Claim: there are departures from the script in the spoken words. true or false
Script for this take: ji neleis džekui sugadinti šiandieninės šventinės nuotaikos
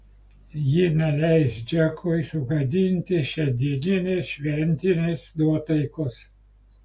false